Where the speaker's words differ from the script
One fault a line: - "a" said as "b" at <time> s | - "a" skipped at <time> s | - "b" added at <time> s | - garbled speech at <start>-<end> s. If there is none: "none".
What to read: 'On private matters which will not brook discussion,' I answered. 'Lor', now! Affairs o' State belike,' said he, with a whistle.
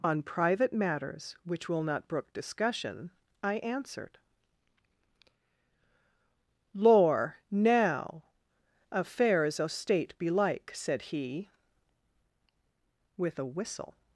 none